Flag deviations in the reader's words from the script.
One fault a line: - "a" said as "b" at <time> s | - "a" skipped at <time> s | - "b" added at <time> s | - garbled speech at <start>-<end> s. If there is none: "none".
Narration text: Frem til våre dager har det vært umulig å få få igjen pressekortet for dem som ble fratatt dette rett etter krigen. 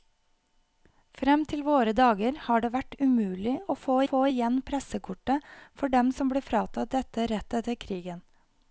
none